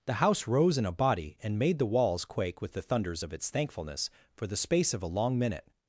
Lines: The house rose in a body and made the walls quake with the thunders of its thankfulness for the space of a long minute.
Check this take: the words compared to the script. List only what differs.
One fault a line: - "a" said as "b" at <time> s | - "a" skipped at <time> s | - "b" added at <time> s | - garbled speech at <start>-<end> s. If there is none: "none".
none